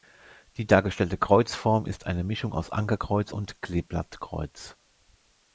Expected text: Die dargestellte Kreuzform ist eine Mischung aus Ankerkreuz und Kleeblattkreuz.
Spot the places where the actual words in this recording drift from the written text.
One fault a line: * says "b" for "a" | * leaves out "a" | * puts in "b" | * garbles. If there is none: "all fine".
all fine